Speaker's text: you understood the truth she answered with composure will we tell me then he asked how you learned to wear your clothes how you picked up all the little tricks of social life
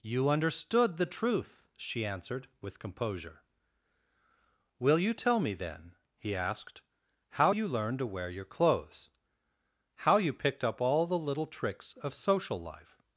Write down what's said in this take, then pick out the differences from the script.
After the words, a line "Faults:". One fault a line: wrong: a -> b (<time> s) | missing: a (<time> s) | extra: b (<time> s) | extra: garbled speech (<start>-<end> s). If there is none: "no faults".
you understood the truth she answered with composure will you tell me then he asked how you learned to wear your clothes how you picked up all the little tricks of social life
Faults:
wrong: we -> you (5.0 s)